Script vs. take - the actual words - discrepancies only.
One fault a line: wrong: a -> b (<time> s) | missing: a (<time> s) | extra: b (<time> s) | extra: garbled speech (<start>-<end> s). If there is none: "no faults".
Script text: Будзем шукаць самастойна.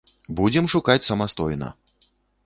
no faults